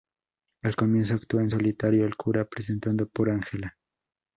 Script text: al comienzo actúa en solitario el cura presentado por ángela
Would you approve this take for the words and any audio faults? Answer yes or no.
yes